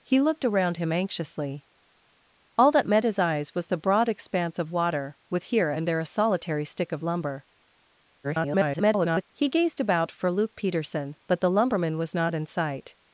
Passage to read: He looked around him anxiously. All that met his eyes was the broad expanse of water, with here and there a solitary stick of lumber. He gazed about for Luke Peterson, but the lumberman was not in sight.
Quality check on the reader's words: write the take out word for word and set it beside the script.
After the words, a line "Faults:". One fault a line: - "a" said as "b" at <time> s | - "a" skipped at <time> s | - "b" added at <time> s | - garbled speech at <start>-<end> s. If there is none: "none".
He looked around him anxiously. All that met his eyes was the broad expanse of water, with here and there a solitary stick of lumber. [garbled] He gazed about for Luke Peterson, but the lumberman was not in sight.
Faults:
- garbled speech at 8.2-9.2 s